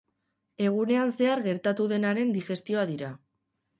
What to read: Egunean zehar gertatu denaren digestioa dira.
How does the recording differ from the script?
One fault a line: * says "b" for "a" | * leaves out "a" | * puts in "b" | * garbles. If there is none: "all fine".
all fine